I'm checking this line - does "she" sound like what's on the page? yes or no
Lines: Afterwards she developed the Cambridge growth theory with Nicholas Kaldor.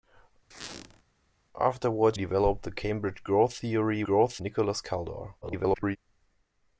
no